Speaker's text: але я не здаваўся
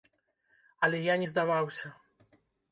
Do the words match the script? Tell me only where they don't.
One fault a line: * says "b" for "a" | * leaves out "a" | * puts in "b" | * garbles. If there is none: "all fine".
all fine